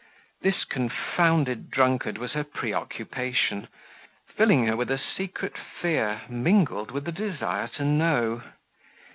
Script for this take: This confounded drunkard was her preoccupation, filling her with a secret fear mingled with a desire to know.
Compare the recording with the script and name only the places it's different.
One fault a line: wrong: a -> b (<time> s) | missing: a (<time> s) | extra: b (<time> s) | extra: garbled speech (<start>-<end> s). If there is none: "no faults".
no faults